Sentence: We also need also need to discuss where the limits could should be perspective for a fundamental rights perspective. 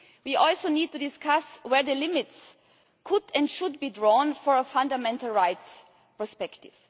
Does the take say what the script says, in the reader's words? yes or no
no